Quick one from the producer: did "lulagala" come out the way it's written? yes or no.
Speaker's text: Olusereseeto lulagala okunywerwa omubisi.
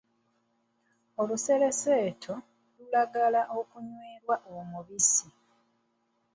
yes